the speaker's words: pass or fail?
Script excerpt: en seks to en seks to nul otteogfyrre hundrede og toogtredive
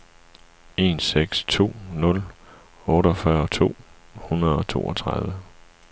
fail